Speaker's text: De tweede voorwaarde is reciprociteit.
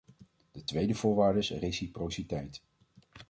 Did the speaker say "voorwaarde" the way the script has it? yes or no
yes